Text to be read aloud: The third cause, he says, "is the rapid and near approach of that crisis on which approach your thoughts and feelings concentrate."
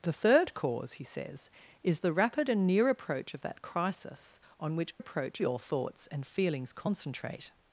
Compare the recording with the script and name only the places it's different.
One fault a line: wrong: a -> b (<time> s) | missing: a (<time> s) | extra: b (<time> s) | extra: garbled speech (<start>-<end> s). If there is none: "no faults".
no faults